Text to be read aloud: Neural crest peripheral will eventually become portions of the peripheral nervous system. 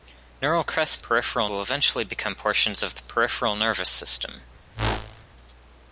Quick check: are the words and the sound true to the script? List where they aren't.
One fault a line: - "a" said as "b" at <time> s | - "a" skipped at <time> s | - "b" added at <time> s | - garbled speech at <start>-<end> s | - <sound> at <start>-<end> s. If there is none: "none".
- whoosh at 4.7-5.2 s